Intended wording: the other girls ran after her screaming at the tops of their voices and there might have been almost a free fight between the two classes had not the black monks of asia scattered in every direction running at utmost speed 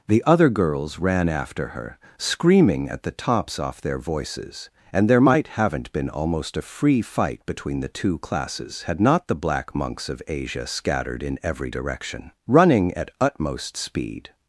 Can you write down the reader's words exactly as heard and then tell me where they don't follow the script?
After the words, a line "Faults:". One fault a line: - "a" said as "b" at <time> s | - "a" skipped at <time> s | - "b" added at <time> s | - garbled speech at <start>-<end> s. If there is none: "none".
the other girls ran after her screaming at the tops off their voices and there might haven't been almost a free fight between the two classes had not the black monks of asia scattered in every direction running at utmost speed
Faults:
- "of" said as "off" at 3.6 s
- "have" said as "haven't" at 5.5 s